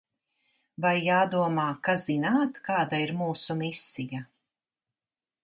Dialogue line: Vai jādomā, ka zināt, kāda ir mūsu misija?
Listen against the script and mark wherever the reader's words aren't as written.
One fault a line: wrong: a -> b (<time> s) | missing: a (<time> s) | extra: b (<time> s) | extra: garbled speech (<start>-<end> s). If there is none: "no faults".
no faults